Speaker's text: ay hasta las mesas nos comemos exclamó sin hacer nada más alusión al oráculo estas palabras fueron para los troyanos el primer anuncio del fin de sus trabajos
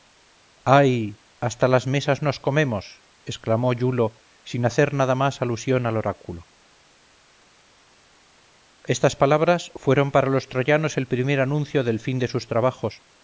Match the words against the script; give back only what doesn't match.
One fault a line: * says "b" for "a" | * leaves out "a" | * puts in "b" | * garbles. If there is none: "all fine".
* puts in "iulo"